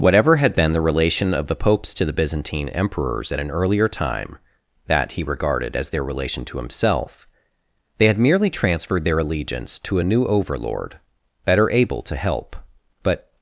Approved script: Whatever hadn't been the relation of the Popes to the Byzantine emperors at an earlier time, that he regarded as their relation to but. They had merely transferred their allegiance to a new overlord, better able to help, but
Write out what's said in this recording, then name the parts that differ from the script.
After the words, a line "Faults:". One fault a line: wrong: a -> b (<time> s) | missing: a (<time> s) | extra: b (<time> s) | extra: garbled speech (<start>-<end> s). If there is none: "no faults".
Whatever had been the relation of the Popes to the Byzantine emperors at an earlier time, that he regarded as their relation to himself. They had merely transferred their allegiance to a new overlord, better able to help, but
Faults:
wrong: hadn't -> had (0.4 s)
wrong: but -> himself (6.6 s)